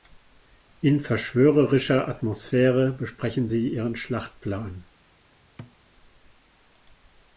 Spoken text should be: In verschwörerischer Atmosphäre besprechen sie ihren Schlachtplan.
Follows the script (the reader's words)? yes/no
yes